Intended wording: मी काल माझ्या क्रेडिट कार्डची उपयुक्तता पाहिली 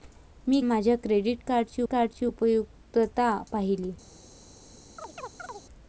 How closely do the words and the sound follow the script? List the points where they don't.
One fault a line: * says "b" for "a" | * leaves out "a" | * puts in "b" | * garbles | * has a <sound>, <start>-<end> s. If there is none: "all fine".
* leaves out "काल"
* puts in "कार्डची"
* has a chirp, 5.0-5.7 s